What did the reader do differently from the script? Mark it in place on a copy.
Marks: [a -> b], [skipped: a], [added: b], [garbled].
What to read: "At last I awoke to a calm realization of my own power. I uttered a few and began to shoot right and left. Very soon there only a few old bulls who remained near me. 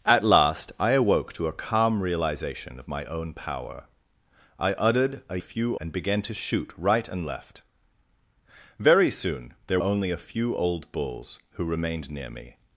"At last I awoke to a calm realization of my own power. I uttered a few and began to shoot right and left. Very soon there only a few old bulls who remained near me.